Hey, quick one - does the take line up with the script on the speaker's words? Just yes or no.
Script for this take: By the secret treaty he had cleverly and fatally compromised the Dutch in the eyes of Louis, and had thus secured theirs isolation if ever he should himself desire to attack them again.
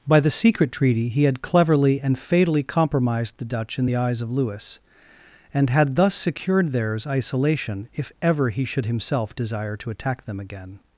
yes